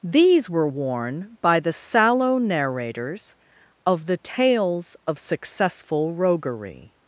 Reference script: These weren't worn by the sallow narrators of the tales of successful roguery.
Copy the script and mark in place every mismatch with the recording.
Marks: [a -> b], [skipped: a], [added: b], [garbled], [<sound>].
These [weren't -> were] worn by the sallow narrators of the tales of successful roguery.